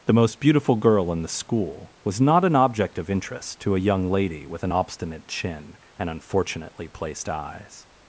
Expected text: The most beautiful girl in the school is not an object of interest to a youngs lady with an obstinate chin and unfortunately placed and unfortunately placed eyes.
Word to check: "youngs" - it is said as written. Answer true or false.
false